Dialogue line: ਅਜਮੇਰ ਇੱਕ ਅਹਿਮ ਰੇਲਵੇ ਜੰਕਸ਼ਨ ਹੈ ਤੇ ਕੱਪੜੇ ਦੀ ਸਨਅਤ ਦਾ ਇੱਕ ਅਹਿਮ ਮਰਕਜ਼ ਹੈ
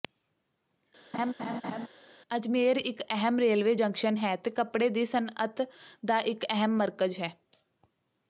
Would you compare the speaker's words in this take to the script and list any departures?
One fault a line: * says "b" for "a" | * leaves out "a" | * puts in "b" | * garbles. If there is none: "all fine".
all fine